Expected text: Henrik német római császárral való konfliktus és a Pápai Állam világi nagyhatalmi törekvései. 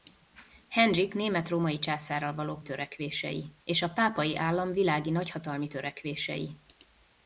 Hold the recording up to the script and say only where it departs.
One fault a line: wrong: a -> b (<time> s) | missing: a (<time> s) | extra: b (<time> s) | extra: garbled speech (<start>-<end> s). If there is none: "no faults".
wrong: konfliktus -> törekvései (2.6 s)